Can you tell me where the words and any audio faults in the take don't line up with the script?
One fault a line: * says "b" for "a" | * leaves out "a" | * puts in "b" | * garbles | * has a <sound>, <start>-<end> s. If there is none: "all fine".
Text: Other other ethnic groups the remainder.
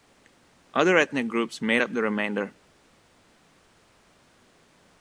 * leaves out "other"
* puts in "made up"